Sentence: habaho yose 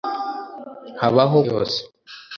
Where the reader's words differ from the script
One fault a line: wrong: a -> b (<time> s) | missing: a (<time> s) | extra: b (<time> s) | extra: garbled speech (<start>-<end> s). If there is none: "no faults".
no faults